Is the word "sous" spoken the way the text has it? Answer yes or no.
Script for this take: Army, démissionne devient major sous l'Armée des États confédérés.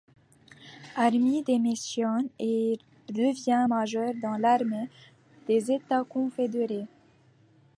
no